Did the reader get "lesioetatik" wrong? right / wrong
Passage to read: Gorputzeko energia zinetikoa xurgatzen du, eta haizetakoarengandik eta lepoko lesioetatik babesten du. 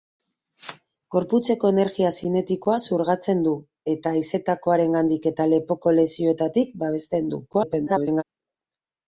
right